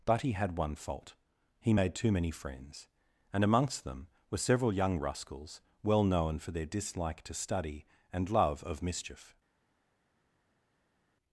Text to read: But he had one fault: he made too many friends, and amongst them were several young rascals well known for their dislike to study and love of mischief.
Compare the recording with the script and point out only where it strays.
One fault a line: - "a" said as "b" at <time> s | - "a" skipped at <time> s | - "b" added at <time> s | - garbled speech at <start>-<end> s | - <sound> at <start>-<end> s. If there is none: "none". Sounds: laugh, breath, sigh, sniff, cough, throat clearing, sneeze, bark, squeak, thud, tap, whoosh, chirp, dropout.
none